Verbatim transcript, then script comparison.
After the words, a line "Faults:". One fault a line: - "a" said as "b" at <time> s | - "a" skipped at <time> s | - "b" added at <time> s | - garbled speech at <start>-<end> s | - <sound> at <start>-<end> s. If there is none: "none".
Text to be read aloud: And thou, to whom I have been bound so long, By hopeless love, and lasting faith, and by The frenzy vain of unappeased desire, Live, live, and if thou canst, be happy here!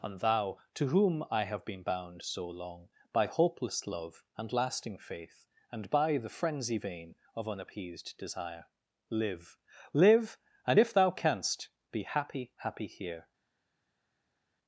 And thou, to whom I have been bound so long, By hopeless love, and lasting faith, and by The frenzy vain of unappeased desire, Live, live, and if thou canst, be happy happy here!
Faults:
- "happy" added at 12.6 s